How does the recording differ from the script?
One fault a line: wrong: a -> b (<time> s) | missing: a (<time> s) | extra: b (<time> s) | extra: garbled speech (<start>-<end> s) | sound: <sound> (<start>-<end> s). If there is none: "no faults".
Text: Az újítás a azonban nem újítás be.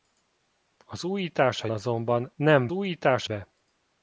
no faults